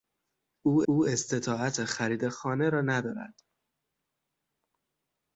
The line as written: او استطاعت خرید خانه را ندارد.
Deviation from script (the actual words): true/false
true